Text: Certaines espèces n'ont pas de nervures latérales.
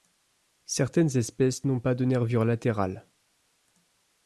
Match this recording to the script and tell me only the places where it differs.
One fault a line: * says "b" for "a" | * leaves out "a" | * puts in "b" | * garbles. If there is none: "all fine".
all fine